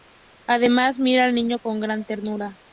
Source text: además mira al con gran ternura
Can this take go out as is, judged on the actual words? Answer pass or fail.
fail